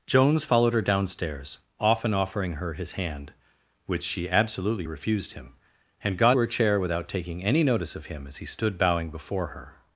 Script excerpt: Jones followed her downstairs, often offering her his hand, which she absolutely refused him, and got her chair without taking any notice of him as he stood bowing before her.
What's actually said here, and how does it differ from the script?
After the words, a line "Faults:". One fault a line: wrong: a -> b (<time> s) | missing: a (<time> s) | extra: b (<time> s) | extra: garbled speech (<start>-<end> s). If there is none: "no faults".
Jones followed her downstairs, often offering her his hand, which she absolutely refused him, and got her chair without taking any notice of him as he stood bowing before her.
Faults:
no faults